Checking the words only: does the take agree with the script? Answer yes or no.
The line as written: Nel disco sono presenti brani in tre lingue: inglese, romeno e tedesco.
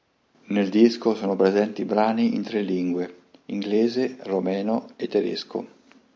yes